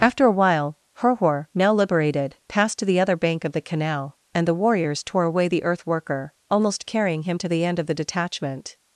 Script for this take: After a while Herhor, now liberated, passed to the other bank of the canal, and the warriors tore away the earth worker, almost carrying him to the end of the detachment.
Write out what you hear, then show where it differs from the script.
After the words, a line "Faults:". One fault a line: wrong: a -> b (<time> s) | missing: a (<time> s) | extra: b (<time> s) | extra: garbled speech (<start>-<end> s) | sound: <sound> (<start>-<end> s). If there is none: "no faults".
After a while Herhor, now liberated, passed to the other bank of the canal, and the warriors tore away the earth worker, almost carrying him to the end of the detachment.
Faults:
no faults